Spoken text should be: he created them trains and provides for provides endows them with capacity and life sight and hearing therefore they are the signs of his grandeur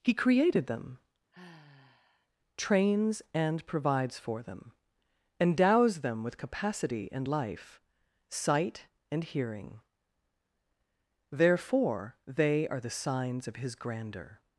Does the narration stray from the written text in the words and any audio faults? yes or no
yes